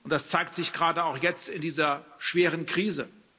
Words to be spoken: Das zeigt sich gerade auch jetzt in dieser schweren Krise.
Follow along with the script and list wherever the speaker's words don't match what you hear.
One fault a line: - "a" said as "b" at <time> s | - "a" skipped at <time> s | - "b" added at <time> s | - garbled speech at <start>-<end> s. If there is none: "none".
none